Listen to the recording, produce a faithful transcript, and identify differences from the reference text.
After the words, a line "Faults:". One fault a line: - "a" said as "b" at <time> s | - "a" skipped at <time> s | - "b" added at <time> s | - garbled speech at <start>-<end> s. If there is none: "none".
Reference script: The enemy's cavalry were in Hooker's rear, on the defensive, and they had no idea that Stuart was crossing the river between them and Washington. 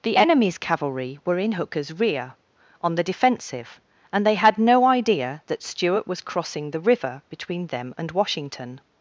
The enemy's cavalry were in Hooker's rear, on the defensive, and they had no idea that Stuart was crossing the river between them and Washington.
Faults:
none